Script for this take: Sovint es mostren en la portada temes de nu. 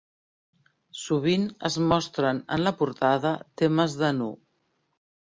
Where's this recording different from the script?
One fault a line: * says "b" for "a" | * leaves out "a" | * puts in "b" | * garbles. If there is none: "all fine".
all fine